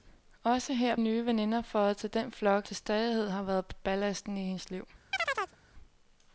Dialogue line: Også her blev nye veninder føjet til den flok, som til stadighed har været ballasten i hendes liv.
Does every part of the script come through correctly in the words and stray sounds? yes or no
no